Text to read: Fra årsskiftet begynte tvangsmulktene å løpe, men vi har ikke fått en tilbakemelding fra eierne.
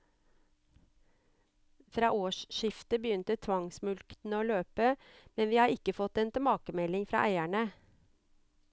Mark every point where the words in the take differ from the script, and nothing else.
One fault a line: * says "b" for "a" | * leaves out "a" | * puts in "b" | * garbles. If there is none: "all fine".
all fine